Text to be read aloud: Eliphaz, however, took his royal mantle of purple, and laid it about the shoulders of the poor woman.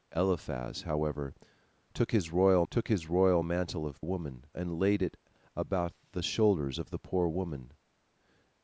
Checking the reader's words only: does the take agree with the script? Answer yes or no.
no